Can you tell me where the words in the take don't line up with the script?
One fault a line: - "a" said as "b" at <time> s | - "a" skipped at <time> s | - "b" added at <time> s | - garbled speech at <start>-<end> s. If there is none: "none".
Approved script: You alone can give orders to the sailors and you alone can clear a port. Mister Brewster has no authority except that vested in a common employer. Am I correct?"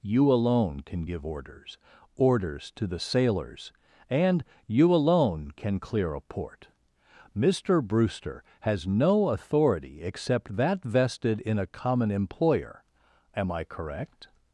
- "orders" added at 2.2 s